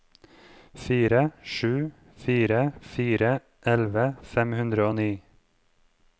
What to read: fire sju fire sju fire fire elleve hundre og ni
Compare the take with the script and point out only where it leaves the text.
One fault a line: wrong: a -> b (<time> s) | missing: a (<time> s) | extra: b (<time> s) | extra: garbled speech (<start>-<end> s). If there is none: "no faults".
missing: sju (2.6 s)
wrong: fire elleve -> elleve fem (3.7 s)